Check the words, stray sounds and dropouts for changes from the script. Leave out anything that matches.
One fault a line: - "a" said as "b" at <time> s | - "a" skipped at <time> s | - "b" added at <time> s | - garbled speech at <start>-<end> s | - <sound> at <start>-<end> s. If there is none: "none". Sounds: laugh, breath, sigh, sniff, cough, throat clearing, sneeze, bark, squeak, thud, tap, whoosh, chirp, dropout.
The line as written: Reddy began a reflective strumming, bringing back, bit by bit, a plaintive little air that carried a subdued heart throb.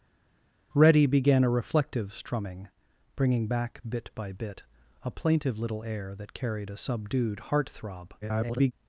- garbled speech at 8.2-8.7 s